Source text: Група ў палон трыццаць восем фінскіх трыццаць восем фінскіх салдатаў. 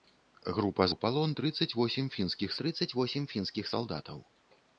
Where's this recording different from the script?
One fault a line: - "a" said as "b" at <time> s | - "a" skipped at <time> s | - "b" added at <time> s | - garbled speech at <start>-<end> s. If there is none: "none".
none